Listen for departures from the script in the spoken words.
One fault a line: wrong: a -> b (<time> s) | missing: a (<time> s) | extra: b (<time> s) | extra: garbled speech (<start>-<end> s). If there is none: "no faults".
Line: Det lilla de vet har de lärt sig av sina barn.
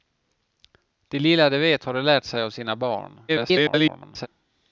extra: garbled speech (3.3-4.3 s)